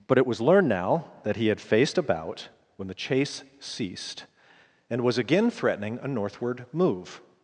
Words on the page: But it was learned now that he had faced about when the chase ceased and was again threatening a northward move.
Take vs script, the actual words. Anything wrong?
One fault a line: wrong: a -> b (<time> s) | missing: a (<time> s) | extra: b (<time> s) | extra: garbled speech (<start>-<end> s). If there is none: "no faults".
no faults